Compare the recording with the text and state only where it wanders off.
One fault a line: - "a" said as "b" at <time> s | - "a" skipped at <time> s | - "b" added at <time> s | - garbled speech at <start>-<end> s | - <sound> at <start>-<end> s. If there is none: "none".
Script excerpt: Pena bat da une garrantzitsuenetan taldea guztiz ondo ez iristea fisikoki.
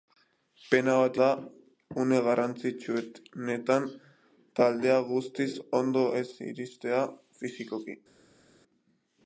none